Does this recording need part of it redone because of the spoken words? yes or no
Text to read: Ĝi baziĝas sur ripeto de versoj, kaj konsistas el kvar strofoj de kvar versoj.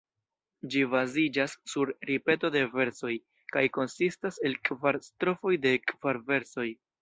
no